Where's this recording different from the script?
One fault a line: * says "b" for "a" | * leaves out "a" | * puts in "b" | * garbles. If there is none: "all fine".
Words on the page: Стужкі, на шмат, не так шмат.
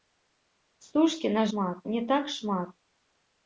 all fine